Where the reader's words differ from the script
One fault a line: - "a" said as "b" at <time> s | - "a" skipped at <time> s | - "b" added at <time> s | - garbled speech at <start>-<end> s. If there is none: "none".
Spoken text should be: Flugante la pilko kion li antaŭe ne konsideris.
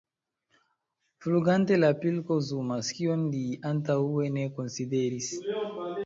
- "zumas" added at 2.5 s